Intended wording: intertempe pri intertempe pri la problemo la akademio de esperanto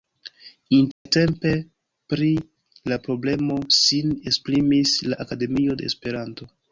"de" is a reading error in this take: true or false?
false